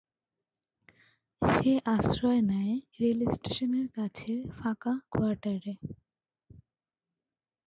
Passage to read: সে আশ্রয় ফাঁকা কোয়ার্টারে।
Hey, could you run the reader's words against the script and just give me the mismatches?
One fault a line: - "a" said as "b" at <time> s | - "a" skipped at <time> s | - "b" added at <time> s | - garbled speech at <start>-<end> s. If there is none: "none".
- "নেয় রেলস্টেশনের কাছের" added at 2.5 s